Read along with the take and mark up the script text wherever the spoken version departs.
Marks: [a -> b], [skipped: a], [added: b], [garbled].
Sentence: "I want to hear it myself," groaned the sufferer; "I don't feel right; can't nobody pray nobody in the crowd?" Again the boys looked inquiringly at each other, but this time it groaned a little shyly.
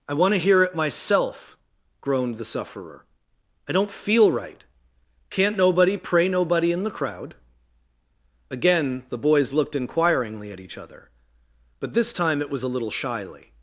"I want to hear it myself," groaned the sufferer; "I don't feel right; can't nobody pray nobody in the crowd?" Again the boys looked inquiringly at each other, but this time it [groaned -> was] a little shyly.